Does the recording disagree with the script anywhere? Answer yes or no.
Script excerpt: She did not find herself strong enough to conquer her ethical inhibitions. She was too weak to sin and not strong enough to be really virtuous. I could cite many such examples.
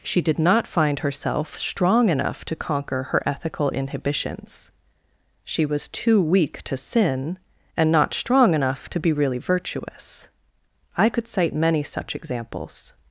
no